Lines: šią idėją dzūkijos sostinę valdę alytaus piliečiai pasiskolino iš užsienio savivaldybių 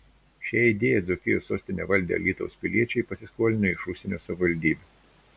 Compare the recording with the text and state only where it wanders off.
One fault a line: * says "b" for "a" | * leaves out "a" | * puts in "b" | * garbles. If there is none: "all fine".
all fine